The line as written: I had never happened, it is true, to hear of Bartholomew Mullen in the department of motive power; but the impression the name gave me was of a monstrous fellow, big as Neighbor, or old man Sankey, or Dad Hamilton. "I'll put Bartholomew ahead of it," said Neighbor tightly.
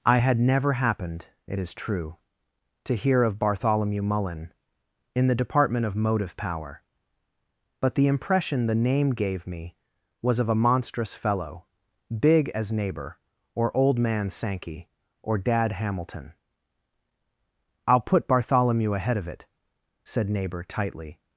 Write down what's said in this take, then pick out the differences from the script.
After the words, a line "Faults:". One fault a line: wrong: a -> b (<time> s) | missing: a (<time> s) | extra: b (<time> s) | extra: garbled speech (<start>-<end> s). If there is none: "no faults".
I had never happened, it is true, to hear of Bartholomew Mullen in the department of motive power; but the impression the name gave me was of a monstrous fellow, big as Neighbor, or old man Sankey, or Dad Hamilton. "I'll put Bartholomew ahead of it," said Neighbor tightly.
Faults:
no faults